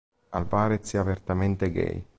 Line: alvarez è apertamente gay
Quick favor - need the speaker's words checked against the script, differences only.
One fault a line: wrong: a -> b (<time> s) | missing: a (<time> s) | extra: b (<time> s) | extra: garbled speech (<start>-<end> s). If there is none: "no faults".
no faults